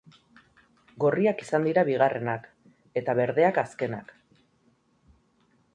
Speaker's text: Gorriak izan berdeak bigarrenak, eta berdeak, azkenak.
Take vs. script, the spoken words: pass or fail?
fail